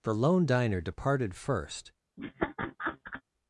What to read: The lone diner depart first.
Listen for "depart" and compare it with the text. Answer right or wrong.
wrong